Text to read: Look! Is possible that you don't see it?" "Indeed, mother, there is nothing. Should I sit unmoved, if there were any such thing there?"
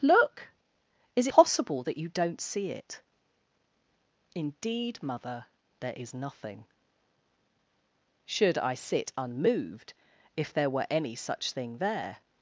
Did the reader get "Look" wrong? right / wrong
right